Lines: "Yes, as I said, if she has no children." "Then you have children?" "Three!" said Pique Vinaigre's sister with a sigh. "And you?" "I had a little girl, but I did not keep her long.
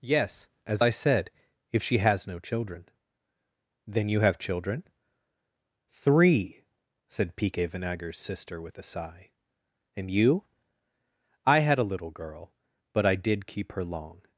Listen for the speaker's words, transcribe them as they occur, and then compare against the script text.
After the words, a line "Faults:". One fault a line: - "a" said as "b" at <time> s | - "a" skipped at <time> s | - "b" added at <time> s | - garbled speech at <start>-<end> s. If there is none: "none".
"Yes, as I said, if she has no children." "Then you have children?" "Three!" said Pique Vinaigre's sister with a sigh. "And you?" "I had a little girl, but I did keep her long.
Faults:
- "not" skipped at 13.5 s